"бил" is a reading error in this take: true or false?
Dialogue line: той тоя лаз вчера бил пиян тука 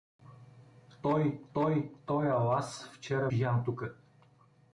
true